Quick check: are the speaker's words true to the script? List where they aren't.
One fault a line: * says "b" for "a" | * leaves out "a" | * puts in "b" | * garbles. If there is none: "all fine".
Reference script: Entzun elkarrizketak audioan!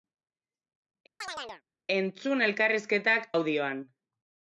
all fine